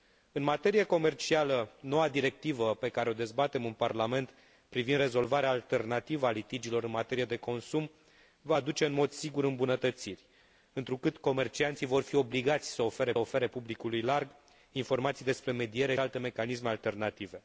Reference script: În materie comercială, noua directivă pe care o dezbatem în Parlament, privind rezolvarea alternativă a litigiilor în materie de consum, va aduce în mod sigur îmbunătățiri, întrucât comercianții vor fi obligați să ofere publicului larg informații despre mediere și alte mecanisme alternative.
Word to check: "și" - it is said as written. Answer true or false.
false